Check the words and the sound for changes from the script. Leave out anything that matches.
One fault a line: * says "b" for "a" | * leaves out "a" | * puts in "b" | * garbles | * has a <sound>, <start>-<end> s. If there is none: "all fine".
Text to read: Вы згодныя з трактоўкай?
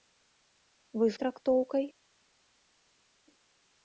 * leaves out "згодныя"